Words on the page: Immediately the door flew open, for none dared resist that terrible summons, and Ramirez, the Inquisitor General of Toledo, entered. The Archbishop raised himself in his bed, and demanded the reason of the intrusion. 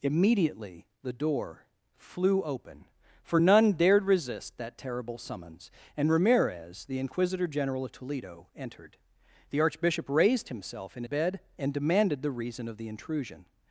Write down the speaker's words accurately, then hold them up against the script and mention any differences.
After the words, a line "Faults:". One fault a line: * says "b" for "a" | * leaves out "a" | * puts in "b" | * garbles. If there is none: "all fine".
Immediately the door flew open, for none dared resist that terrible summons, and Ramirez, the Inquisitor General of Toledo, entered. The Archbishop raised himself in bed, and demanded the reason of the intrusion.
Faults:
* leaves out "his"